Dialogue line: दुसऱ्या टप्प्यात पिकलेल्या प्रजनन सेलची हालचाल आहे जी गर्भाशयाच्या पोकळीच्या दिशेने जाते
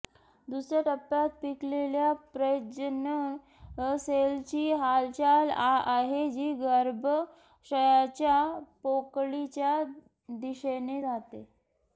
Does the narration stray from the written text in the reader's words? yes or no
no